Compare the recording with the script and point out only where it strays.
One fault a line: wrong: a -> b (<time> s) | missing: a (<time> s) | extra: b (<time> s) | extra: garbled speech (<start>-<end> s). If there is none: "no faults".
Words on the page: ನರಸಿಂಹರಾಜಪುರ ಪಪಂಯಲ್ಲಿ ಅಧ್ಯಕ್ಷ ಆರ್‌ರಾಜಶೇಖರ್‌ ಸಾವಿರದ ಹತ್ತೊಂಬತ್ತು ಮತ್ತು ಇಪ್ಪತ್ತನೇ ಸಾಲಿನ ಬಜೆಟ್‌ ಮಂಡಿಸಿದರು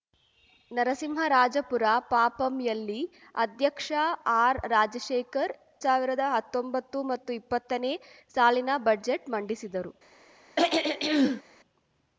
no faults